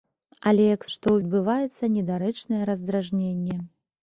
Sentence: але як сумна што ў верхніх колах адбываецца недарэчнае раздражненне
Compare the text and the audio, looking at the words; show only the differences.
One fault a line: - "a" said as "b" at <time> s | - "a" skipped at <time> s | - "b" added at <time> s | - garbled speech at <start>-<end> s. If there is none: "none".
- "сумна" skipped at 0.8 s
- "верхніх колах" skipped at 1.2 s